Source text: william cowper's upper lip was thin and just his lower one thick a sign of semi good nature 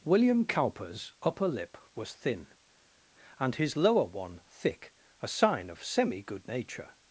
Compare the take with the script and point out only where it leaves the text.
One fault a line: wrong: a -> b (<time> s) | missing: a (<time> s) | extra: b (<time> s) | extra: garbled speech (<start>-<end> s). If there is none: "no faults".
missing: just (3.5 s)